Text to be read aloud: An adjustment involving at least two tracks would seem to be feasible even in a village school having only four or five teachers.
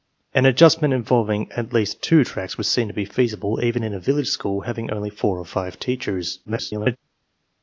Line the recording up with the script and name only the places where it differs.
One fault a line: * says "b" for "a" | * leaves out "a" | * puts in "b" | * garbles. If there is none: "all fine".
* garbles